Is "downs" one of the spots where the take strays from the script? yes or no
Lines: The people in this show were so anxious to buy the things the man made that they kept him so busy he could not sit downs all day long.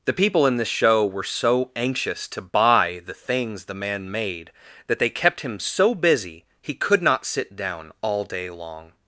yes